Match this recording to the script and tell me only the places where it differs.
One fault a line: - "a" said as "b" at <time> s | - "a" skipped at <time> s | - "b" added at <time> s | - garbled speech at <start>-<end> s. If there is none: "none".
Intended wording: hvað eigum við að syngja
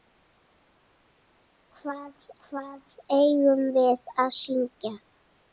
- "hvað" added at 2.5 s